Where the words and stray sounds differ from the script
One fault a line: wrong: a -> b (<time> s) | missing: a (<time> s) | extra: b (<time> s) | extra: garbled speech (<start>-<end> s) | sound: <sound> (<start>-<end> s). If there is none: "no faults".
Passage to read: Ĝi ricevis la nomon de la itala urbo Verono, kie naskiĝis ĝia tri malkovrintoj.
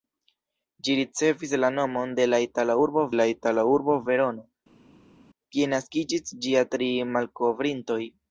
extra: la itala urbo (3.2 s)